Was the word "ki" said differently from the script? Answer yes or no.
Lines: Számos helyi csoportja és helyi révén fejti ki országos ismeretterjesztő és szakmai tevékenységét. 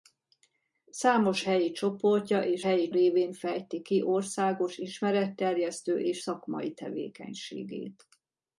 no